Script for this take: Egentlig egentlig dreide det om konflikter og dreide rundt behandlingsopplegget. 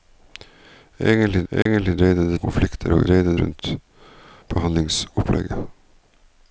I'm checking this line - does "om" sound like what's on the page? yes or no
yes